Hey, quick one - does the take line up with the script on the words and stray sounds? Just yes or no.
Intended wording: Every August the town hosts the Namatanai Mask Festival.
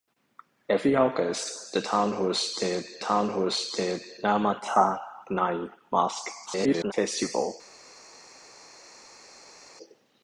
no